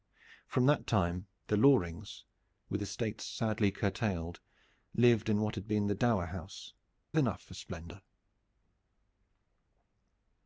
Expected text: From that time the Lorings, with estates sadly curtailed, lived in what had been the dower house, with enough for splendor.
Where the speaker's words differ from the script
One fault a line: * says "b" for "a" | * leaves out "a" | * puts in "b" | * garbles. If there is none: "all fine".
* leaves out "with"